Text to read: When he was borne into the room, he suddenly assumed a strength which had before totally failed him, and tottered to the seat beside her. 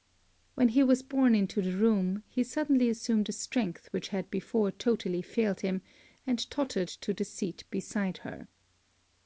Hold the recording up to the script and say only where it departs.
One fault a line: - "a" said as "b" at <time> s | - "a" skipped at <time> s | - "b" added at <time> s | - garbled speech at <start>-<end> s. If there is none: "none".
none